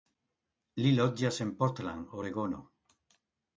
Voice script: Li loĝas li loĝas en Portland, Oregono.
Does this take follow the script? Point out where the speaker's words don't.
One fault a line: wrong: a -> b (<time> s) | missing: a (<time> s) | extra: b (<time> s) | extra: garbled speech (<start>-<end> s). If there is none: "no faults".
missing: li loĝas (1.4 s)